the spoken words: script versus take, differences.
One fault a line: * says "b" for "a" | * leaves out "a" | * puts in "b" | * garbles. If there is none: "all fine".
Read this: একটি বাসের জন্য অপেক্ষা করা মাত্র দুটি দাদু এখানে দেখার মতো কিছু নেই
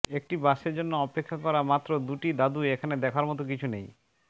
all fine